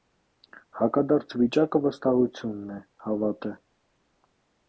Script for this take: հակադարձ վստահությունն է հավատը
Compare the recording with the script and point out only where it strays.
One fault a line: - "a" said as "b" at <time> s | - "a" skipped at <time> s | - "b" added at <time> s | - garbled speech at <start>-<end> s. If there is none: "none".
- "վիճակը" added at 1.4 s